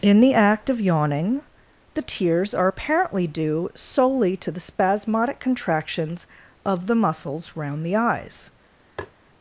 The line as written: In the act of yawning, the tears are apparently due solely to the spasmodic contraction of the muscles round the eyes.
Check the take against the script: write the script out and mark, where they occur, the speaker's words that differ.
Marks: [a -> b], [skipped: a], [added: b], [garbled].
In the act of yawning, the tears are apparently due solely to the spasmodic [contraction -> contractions] of the muscles round the eyes.